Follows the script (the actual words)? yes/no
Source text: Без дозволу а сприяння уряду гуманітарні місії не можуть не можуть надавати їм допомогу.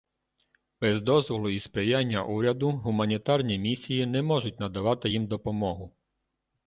no